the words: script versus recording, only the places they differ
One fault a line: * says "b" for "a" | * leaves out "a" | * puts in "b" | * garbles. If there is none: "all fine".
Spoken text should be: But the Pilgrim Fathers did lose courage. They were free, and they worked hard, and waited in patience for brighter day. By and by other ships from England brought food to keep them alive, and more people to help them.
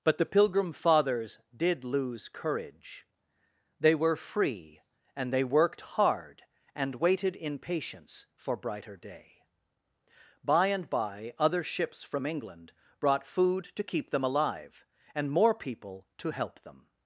all fine